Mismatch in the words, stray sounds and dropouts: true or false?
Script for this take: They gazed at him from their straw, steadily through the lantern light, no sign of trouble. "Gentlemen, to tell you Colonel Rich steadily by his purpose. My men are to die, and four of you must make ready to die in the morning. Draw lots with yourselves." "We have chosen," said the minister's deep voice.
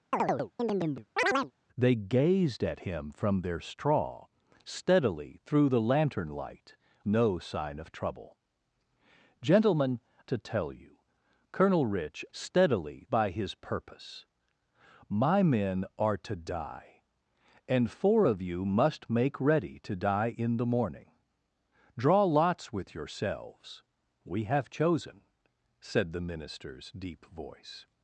true